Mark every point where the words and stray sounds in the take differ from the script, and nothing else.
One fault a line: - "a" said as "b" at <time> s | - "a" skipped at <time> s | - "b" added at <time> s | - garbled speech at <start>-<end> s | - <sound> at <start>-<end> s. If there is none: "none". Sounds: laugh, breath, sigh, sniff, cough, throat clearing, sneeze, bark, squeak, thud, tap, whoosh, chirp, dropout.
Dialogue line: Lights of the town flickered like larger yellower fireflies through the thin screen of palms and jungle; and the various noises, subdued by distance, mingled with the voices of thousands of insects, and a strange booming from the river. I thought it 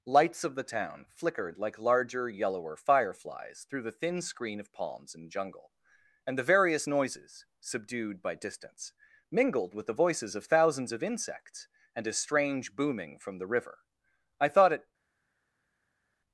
none